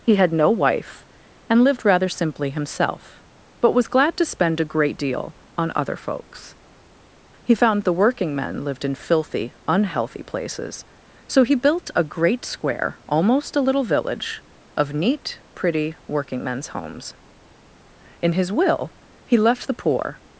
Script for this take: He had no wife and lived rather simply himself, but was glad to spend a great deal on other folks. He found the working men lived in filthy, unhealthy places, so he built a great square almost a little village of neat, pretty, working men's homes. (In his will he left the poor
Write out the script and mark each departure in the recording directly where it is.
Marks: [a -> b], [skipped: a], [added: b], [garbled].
He had no wife and lived rather simply himself, but was glad to spend a great deal on other folks. He found the working men lived in filthy, unhealthy places, so he built a great square almost a little village of neat, pretty, working men's homes. (In his will he left the poor